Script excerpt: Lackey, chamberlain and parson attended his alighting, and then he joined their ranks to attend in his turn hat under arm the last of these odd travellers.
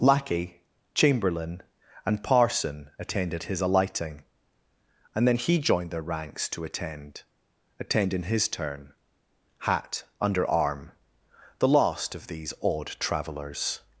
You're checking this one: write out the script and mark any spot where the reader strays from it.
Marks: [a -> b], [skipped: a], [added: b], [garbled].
Lackey, chamberlain and parson attended his alighting, and then he joined their ranks to attend [added: attend] in his turn hat under arm the last of these odd travellers.